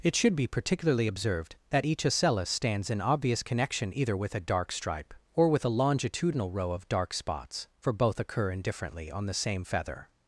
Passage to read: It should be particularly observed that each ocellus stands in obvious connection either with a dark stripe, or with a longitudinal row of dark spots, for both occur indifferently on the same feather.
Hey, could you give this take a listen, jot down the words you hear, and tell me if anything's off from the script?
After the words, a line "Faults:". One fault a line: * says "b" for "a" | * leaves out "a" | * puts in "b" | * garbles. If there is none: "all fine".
It should be particularly observed that each ocellus stands in obvious connection either with a dark stripe, or with a longitudinal row of dark spots, for both occur indifferently on the same feather.
Faults:
all fine